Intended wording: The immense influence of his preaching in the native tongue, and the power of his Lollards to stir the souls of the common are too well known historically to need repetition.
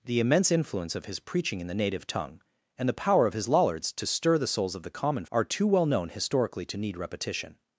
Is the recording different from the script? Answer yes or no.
no